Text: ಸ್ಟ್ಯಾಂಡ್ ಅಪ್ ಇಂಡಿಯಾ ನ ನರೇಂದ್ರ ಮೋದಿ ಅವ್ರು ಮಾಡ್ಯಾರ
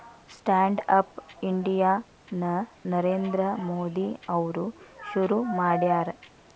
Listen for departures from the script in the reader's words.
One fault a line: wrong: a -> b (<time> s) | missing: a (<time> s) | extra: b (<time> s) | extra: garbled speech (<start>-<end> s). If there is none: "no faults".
extra: ಶುರು (5.1 s)